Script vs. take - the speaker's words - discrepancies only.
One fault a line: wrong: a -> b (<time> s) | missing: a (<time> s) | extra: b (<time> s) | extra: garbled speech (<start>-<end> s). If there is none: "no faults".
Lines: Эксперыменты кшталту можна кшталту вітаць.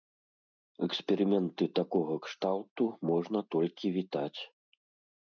extra: такога (1.8 s)
wrong: кшталту -> толькі (3.6 s)